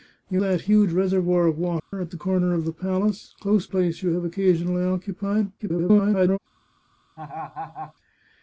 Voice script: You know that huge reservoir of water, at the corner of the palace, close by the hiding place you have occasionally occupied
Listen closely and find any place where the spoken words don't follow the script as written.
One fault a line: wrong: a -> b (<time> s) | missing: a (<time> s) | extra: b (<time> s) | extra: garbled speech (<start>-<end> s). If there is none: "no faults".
missing: know (0.4 s)
missing: by the hiding (3.7 s)
extra: garbled speech (5.6-6.4 s)